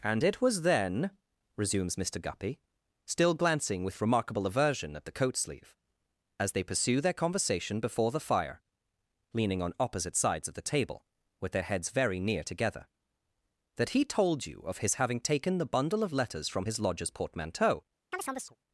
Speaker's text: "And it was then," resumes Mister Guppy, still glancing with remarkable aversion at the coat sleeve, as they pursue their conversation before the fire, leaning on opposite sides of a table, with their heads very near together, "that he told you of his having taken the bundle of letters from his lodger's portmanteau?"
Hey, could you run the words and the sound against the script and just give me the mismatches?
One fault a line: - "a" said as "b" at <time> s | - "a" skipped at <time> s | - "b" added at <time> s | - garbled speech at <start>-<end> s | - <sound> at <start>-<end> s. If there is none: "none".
- "a" said as "the" at 10.5 s
- chirp at 18.1-18.6 s